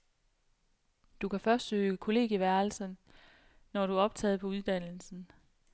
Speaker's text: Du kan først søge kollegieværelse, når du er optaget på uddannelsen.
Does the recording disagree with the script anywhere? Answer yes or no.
no